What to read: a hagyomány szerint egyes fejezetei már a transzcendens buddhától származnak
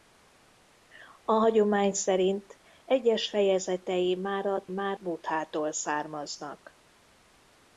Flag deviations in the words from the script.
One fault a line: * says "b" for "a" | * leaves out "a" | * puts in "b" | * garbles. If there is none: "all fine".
* says "már" for "transzcendens"